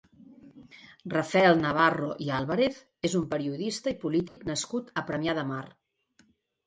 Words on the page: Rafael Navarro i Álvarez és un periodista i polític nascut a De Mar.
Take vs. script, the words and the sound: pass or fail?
fail